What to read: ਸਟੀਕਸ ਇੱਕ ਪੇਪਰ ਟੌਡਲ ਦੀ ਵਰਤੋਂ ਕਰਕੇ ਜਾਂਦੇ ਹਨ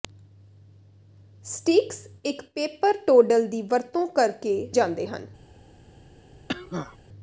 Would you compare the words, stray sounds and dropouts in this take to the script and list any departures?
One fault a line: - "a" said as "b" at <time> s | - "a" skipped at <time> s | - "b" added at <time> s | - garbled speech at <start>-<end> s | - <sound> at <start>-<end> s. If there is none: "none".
- cough at 6.5-7.0 s